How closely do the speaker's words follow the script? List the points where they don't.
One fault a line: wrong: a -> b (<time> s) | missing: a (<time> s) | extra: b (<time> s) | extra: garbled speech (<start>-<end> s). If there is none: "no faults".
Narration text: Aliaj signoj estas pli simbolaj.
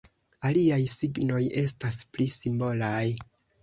no faults